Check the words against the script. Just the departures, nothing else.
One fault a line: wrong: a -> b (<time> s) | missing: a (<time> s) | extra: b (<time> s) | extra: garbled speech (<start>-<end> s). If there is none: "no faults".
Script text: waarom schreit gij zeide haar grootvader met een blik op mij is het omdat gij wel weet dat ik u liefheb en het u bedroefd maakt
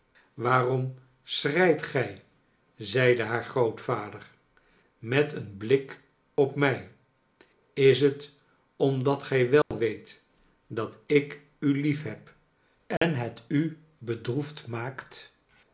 no faults